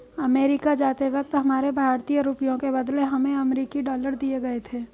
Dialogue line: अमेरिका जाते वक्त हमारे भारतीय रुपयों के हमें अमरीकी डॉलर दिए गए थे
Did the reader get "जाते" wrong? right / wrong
right